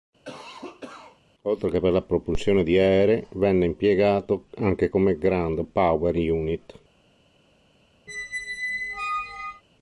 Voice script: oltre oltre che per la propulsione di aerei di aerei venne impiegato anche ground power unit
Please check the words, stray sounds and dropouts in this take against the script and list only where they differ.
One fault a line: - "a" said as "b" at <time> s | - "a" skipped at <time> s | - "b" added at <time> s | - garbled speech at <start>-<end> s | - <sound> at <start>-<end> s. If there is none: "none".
- cough at 0.2-1.2 s
- "oltre" skipped at 1.7 s
- "di aerei" skipped at 3.3 s
- "come" added at 4.9 s
- squeak at 8.1-9.6 s